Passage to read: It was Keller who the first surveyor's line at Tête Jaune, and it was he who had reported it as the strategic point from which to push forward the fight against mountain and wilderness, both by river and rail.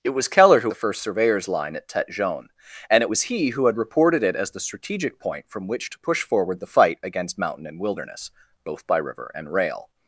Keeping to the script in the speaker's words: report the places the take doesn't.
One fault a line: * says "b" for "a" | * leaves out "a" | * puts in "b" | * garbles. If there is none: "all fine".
all fine